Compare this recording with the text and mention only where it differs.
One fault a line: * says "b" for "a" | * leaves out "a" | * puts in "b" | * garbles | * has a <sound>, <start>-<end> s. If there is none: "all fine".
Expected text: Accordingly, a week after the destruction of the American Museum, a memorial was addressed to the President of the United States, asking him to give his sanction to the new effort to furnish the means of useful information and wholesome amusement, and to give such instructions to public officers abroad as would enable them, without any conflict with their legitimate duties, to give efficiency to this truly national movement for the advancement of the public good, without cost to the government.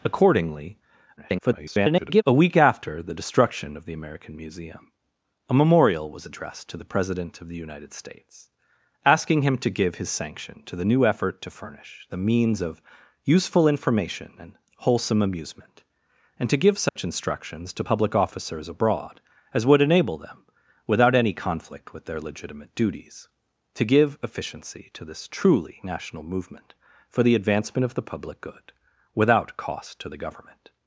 * garbles
* has a dropout, 16.9-17.0 s